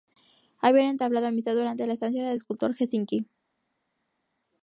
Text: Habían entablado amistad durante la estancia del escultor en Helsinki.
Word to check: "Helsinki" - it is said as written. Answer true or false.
true